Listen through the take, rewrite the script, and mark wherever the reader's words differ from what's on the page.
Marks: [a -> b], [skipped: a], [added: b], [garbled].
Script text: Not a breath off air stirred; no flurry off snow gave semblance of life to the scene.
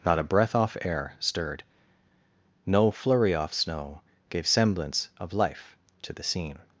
Not a breath off air stirred; no flurry off snow gave semblance of life to the scene.